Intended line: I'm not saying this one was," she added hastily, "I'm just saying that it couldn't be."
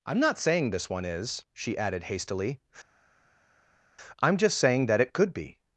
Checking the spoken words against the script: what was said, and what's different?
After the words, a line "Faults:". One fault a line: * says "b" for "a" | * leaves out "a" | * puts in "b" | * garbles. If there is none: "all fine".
I'm not saying this one is," she added hastily, "I'm just saying that it could be."
Faults:
* says "is" for "was"
* says "could" for "couldn't"